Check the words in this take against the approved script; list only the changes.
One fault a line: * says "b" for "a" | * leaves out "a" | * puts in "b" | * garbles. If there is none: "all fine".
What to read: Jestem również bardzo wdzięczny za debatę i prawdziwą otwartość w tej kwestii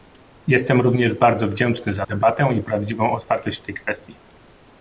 all fine